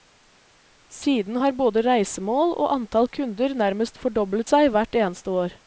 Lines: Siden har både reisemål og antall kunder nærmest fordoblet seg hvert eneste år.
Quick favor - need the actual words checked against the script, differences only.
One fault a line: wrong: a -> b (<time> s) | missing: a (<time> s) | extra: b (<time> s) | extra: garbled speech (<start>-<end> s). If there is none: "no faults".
no faults